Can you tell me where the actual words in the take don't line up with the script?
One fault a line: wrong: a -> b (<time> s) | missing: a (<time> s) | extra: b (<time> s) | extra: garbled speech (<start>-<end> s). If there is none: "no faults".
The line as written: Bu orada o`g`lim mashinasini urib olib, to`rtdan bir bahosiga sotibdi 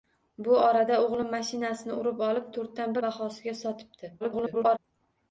missing: bir (3.0 s)
extra: garbled speech (4.2-4.8 s)